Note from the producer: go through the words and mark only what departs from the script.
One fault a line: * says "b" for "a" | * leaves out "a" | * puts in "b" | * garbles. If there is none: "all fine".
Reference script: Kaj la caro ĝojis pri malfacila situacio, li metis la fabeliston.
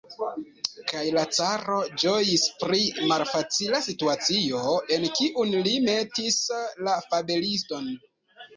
* puts in "en kiun"